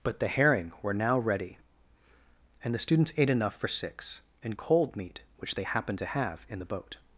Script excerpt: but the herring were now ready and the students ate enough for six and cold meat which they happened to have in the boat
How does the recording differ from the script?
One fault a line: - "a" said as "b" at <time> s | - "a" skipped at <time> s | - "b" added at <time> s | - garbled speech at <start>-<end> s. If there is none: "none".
none